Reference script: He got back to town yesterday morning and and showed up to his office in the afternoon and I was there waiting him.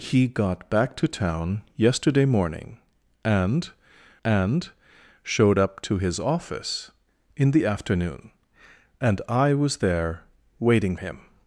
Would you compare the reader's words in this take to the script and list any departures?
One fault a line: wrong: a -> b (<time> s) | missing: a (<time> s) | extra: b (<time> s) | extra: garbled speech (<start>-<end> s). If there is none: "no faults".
no faults